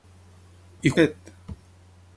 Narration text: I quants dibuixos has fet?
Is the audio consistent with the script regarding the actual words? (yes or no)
no